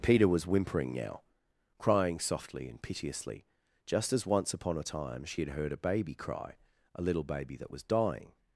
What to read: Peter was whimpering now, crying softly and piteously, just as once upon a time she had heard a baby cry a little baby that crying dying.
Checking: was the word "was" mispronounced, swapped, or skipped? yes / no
no